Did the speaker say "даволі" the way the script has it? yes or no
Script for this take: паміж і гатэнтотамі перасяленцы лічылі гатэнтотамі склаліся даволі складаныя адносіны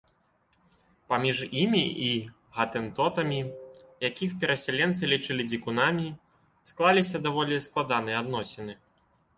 yes